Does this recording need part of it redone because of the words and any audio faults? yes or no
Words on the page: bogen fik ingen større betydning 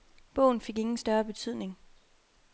no